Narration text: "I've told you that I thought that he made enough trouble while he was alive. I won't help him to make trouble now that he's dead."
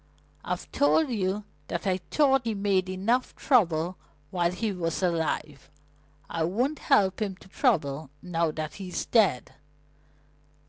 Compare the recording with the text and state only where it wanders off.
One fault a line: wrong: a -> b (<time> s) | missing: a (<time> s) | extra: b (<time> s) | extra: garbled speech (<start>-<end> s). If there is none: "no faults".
missing: that (2.5 s)
missing: make (7.5 s)